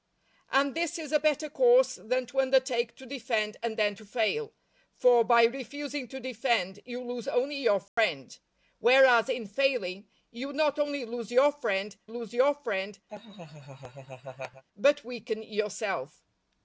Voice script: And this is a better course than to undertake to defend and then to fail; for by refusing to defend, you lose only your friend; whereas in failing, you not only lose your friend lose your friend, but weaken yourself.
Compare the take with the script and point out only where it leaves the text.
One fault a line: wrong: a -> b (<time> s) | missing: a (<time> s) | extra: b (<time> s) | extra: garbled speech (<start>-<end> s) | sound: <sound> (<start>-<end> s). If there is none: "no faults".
sound: dropout (7.9-8.0 s)
sound: laugh (13.1-14.6 s)